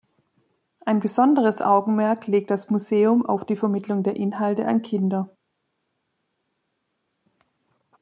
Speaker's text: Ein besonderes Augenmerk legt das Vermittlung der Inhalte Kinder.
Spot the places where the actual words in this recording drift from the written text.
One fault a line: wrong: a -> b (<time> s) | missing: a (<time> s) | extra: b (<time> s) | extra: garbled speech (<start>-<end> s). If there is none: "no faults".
extra: Museum auf die (2.7 s)
extra: an (4.7 s)